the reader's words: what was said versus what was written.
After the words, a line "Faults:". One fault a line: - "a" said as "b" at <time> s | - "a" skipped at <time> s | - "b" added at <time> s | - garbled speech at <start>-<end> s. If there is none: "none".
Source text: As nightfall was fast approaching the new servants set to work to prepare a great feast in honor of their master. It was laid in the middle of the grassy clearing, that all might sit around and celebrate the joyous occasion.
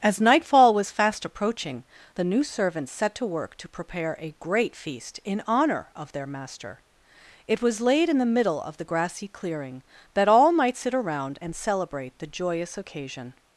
As nightfall was fast approaching the new servants set to work to prepare a great feast in honor of their master. It was laid in the middle of the grassy clearing, that all might sit around and celebrate the joyous occasion.
Faults:
none